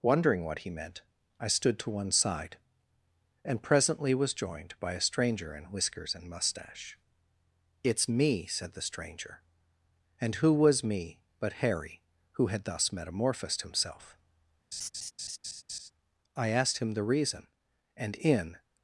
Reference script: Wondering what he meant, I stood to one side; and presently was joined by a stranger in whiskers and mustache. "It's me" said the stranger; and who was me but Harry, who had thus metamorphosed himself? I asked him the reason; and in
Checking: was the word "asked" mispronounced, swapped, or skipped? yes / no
no